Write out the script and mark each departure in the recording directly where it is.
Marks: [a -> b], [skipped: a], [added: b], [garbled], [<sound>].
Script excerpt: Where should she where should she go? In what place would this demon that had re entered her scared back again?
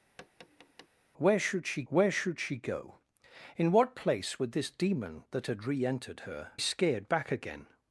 [tap] Where should she where should she go? In what place would this demon that had re entered her scared back again?